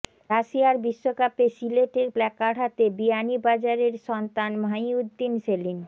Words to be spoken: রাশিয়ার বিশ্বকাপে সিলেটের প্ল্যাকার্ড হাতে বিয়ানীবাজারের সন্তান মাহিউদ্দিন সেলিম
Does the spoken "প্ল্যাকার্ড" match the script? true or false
true